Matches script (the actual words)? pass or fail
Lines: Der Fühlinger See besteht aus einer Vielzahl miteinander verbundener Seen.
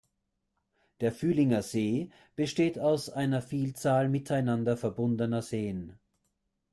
pass